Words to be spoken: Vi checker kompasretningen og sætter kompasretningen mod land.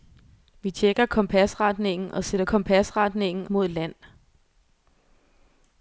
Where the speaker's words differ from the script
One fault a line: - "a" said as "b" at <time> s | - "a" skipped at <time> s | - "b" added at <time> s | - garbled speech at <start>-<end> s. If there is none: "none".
none